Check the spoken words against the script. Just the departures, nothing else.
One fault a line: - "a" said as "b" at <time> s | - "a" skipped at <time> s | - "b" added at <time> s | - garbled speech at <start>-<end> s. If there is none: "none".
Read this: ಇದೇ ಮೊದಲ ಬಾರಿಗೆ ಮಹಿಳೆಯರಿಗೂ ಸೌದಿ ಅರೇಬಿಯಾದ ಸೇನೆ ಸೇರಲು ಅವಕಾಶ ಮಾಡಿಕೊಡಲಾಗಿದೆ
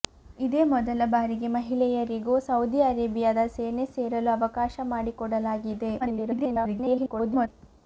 - garbled speech at 6.0-7.5 s